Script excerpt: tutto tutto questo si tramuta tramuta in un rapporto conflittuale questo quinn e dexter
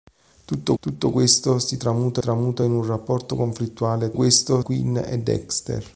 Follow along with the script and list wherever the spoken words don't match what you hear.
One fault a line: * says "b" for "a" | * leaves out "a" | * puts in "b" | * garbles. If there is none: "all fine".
all fine